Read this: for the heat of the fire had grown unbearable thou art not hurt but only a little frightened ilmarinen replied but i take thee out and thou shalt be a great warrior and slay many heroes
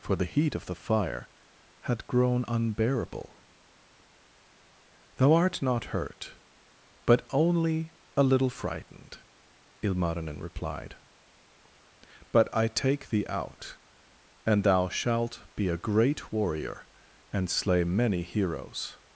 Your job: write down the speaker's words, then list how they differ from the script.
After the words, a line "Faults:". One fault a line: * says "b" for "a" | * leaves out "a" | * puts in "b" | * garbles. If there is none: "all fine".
for the heat of the fire had grown unbearable thou art not hurt but only a little frightened ilmarinen replied but i take thee out and thou shalt be a great warrior and slay many heroes
Faults:
all fine